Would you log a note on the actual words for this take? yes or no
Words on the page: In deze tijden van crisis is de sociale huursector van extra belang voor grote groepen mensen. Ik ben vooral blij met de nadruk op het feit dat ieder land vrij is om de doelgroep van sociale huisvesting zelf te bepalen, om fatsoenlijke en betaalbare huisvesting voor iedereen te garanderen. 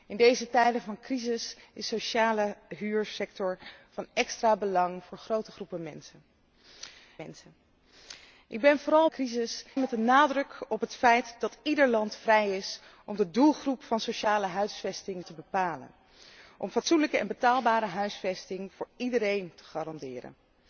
yes